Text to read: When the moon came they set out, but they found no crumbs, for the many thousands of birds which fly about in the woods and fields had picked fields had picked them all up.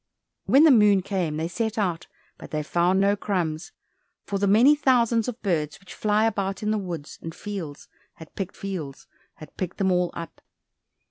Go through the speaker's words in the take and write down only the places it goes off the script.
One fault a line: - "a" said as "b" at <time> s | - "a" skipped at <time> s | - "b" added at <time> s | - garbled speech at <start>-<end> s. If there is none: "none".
none